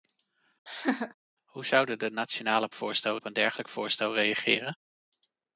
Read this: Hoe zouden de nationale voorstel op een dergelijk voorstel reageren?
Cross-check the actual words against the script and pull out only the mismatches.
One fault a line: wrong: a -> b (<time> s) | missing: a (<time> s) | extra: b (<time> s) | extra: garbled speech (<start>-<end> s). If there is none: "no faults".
no faults